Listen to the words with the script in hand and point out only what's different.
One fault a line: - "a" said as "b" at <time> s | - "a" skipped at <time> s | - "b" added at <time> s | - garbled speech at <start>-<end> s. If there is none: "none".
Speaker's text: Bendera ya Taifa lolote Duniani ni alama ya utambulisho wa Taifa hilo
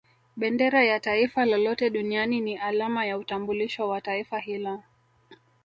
none